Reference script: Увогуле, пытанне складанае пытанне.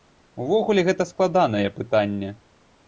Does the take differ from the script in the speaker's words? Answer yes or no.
yes